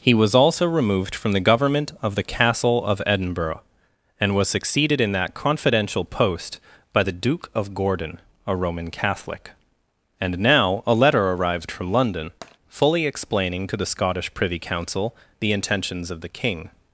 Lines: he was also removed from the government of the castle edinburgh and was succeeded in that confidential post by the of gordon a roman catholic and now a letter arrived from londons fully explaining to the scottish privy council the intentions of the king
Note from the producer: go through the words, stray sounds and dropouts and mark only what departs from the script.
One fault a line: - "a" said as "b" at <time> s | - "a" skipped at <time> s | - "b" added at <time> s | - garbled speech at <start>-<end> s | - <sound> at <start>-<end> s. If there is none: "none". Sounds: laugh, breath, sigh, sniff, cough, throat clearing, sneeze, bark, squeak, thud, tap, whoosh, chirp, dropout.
- "of" added at 2.8 s
- "duke" added at 7.1 s
- "londons" said as "london" at 11.9 s
- tap at 12.4-12.6 s